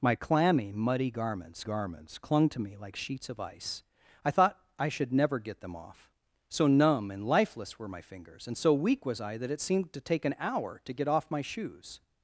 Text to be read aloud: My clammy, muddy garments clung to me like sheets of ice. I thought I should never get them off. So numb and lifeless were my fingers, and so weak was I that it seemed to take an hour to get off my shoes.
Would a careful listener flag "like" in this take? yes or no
no